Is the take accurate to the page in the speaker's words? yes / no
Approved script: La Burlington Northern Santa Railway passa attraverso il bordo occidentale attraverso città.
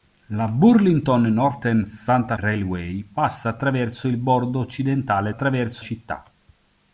yes